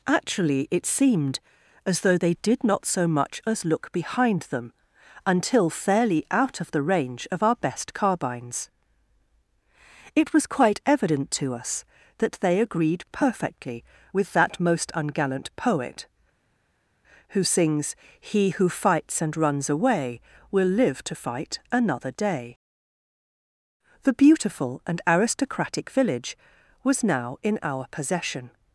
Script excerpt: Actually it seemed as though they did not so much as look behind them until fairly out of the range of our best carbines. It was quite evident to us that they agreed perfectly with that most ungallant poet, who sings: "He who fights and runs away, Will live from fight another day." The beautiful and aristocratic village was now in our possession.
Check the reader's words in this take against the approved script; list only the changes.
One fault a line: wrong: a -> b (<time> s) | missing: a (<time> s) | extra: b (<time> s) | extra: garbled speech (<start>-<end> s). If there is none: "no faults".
wrong: from -> to (21.0 s)